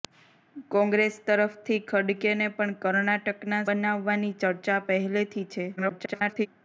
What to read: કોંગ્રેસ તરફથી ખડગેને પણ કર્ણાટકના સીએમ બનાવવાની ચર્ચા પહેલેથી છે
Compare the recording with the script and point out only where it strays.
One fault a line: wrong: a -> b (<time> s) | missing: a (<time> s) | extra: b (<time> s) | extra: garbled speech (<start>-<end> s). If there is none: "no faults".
missing: સીએમ (3.6 s)
extra: garbled speech (5.8-6.5 s)